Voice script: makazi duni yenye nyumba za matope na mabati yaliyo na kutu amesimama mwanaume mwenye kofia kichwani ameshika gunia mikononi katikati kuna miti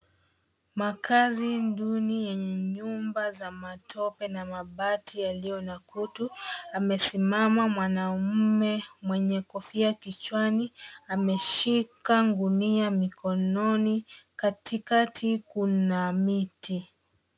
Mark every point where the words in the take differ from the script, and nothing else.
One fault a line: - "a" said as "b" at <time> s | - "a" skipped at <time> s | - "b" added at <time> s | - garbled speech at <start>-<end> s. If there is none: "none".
none